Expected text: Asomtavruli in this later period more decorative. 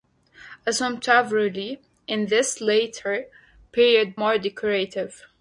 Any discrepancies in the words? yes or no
no